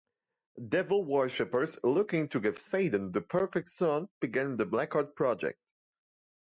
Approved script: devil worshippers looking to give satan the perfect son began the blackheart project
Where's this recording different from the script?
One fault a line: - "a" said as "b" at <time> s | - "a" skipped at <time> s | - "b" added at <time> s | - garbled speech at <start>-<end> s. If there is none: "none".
none